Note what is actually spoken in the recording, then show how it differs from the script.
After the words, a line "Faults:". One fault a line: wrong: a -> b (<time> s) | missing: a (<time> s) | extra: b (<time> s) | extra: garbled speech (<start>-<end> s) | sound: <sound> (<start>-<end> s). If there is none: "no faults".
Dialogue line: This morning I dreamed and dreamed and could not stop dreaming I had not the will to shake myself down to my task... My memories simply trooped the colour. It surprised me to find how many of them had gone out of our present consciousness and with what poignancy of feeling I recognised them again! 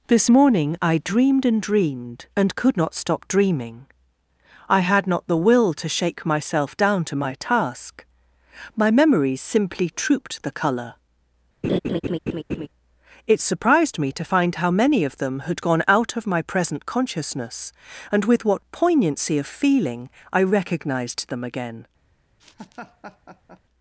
This morning I dreamed and dreamed and could not stop dreaming I had not the will to shake myself down to my task... My memories simply trooped the colour. It surprised me to find how many of them had gone out of my present consciousness and with what poignancy of feeling I recognised them again!
Faults:
sound: laugh (11.6-12.7 s)
wrong: our -> my (16.3 s)
sound: laugh (22.4-23.6 s)